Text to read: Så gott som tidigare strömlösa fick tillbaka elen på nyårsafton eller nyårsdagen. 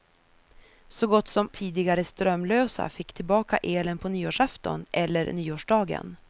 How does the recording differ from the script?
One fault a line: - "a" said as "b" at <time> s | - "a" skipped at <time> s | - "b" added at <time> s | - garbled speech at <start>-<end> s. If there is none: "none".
none